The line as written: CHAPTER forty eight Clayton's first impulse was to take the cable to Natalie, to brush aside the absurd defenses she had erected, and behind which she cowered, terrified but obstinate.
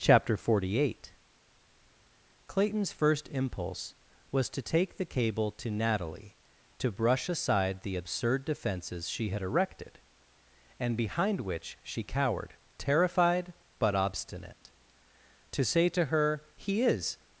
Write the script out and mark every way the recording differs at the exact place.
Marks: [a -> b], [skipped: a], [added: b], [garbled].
CHAPTER forty eight Clayton's first impulse was to take the cable to Natalie, to brush aside the absurd defenses she had erected, and behind which she cowered, terrified but obstinate. [added: To say to her He is]